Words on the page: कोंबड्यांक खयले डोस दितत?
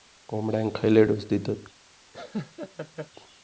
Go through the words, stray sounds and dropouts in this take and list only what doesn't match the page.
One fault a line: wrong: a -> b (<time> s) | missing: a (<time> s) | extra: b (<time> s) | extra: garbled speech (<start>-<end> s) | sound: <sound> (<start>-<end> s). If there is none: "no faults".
sound: laugh (2.1-3.1 s)